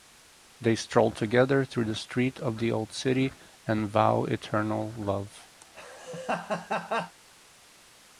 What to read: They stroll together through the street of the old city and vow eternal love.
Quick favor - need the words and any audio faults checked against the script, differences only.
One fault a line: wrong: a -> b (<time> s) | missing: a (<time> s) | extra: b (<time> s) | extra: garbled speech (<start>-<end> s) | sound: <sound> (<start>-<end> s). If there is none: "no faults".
sound: laugh (5.6-7.2 s)